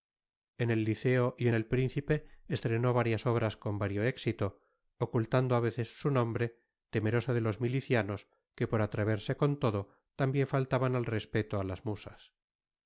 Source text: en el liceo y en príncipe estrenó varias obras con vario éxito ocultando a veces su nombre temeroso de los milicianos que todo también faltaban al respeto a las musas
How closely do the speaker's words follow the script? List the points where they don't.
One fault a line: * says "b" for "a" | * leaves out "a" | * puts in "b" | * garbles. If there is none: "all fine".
* puts in "el"
* puts in "por atreverse con"